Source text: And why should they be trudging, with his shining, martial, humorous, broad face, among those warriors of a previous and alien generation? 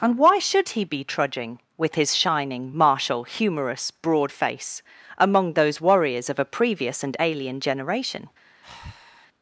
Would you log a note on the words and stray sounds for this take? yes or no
yes